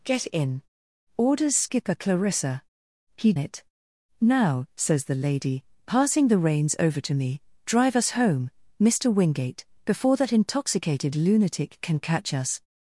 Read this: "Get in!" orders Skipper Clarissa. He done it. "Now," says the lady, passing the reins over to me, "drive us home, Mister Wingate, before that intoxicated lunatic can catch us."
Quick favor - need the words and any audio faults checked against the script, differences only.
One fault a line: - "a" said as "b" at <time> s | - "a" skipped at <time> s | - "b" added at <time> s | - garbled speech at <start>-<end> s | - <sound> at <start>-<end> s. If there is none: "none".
- "done" skipped at 3.3 s